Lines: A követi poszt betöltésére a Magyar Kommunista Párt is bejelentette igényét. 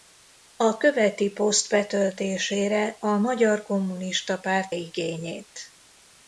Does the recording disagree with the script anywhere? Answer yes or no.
yes